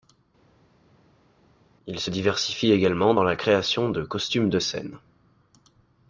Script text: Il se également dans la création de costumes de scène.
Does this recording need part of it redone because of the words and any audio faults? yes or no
yes